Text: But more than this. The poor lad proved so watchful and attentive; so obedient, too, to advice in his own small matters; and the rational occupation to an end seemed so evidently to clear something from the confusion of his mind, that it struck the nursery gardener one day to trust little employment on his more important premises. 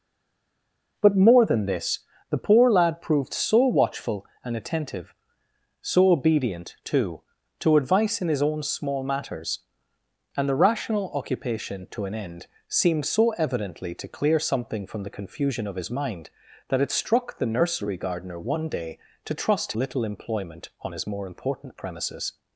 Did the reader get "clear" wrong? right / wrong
right